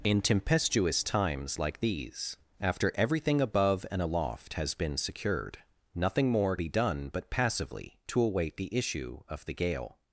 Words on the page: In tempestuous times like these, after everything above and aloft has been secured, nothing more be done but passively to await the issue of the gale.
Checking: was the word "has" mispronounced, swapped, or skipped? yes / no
no